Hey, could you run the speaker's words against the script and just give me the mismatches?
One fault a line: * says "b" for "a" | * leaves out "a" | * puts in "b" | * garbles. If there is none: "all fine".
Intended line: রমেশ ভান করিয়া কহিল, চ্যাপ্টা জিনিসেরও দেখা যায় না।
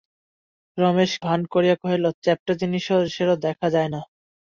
all fine